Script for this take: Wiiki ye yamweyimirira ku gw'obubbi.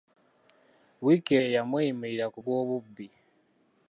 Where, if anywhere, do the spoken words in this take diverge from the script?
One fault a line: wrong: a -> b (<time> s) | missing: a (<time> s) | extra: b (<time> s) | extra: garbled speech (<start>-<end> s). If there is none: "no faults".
no faults